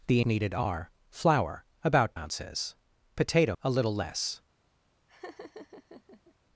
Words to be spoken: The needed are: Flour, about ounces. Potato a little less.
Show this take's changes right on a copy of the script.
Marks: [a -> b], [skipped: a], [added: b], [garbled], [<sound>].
The needed are: Flour, about ounces. Potato a little less. [laugh]